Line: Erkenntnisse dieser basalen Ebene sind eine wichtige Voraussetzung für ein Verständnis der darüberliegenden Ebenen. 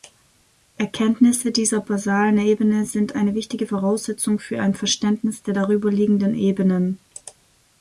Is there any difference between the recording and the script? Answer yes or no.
no